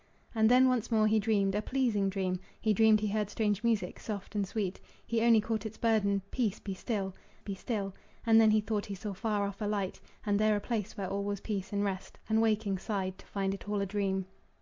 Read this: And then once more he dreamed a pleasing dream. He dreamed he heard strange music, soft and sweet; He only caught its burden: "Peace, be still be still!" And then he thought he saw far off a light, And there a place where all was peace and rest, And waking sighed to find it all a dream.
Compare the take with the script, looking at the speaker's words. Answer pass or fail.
pass